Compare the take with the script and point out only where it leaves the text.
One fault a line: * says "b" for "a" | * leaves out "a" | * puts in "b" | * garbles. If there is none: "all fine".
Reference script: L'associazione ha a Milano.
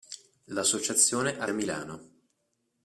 all fine